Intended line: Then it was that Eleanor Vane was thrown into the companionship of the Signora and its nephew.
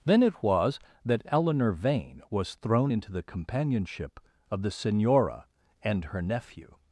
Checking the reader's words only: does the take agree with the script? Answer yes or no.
no